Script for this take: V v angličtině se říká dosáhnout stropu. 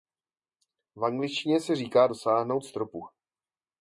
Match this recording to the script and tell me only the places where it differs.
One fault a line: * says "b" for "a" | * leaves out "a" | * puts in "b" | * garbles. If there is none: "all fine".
* leaves out "v"